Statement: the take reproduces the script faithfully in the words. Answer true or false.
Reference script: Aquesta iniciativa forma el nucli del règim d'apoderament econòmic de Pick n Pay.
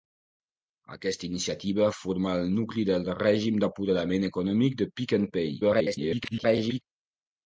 false